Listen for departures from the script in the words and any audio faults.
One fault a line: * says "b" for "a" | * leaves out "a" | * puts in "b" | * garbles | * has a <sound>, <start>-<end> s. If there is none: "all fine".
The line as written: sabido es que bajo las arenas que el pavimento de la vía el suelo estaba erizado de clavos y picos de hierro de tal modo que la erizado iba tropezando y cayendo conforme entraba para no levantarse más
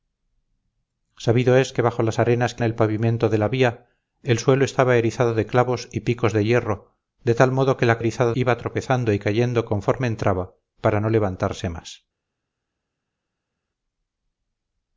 all fine